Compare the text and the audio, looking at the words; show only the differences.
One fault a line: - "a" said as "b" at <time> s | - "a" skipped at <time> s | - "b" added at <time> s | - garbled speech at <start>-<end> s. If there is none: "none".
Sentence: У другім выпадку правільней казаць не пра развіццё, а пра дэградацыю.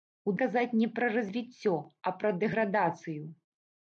- "другім выпадку правільней" skipped at 0.3 s